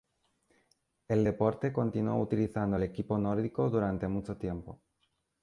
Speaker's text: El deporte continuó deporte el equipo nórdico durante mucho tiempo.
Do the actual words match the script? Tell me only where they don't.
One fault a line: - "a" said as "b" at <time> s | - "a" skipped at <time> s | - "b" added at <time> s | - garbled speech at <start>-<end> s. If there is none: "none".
- "deporte" said as "utilizando" at 2.2 s